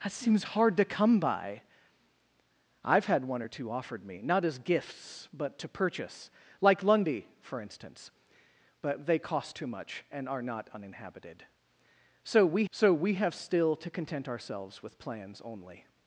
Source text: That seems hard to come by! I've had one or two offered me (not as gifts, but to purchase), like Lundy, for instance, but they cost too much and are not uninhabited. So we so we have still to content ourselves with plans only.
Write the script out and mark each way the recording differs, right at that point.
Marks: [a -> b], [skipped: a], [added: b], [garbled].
That seems hard to come by! I've had one or two offered me (not as gifts, but to purchase), like Lundy, for instance, but they cost too much and are not uninhabited. So we so we have still to content ourselves with plans only.